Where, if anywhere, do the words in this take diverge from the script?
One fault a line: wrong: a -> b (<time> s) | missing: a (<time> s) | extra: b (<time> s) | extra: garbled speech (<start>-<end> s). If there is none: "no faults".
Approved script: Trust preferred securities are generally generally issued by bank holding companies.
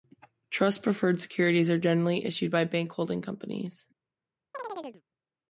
missing: generally (2.2 s)